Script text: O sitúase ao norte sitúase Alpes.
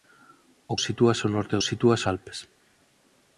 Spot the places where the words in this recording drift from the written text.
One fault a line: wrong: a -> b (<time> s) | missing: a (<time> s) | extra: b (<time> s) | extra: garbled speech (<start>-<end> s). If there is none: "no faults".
no faults